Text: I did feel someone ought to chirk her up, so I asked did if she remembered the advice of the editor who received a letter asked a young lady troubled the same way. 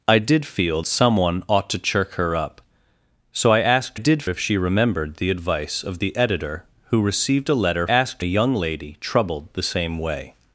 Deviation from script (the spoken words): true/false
false